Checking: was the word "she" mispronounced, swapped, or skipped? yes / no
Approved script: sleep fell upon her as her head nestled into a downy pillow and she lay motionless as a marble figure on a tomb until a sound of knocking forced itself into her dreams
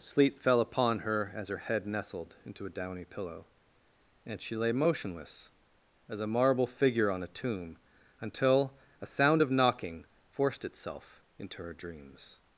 no